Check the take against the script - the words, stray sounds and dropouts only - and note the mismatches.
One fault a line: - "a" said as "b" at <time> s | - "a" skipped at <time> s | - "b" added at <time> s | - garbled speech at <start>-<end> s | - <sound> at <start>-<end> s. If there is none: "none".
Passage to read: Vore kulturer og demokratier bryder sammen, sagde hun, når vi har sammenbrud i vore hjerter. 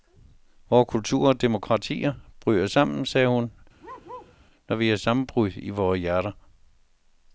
- bark at 3.8-4.3 s